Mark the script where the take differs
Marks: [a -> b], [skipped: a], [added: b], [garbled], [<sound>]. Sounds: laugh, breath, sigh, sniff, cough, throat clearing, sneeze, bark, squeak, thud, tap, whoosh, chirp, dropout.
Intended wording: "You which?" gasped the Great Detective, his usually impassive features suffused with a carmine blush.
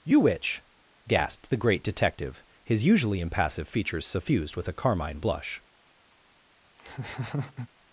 "You which?" gasped the Great Detective, his usually impassive features suffused with a carmine blush. [laugh]